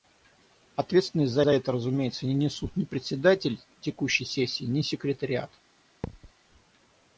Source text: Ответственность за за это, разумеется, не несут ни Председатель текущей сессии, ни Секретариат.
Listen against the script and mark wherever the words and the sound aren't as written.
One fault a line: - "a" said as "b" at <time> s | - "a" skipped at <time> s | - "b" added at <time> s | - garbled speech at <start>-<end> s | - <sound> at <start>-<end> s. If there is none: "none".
- thud at 6.0-6.3 s